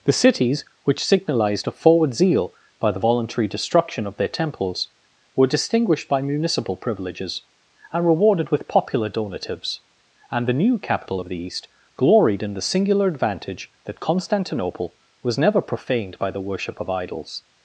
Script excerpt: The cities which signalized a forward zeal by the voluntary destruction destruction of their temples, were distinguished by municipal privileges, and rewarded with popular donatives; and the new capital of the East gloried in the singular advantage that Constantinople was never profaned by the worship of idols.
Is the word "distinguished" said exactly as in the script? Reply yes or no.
yes